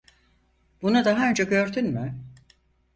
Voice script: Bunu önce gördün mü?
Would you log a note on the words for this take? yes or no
yes